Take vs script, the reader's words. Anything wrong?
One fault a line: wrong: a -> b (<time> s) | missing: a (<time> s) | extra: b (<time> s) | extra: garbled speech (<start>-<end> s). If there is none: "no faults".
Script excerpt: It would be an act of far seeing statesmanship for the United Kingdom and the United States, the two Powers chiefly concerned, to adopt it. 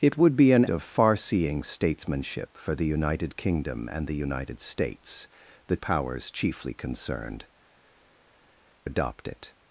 missing: act (0.7 s)
missing: two (5.8 s)
missing: to (7.5 s)